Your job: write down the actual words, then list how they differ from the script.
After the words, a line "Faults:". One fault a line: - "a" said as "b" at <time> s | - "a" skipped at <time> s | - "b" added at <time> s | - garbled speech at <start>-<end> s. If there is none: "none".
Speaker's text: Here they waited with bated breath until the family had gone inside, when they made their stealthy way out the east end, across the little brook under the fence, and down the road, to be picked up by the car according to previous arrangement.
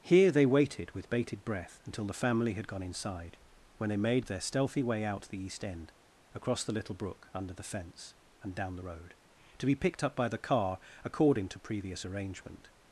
Here they waited with bated breath until the family had gone inside, when they made their stealthy way out the east end, across the little brook under the fence, and down the road, to be picked up by the car according to previous arrangement.
Faults:
none